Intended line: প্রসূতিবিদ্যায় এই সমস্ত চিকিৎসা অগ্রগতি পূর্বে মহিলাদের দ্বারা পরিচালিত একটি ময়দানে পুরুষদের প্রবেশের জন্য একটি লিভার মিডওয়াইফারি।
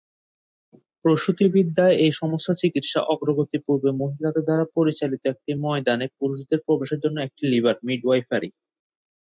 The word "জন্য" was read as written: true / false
true